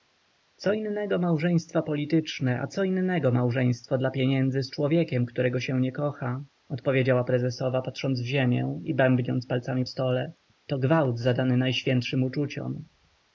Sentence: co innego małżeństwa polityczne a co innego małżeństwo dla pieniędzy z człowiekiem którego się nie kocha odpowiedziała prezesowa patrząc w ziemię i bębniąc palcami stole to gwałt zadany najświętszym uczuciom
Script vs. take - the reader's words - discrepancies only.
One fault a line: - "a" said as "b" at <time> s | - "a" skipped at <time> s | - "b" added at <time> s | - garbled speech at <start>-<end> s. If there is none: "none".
none